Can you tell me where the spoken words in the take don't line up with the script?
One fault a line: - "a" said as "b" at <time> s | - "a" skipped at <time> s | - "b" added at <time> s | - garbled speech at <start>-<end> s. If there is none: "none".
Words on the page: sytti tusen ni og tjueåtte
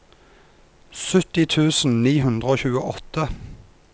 - "hundre" added at 2.2 s